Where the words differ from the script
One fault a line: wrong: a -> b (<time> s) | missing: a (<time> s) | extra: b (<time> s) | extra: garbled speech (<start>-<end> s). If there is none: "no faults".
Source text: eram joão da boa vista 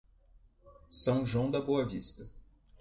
wrong: eram -> são (0.9 s)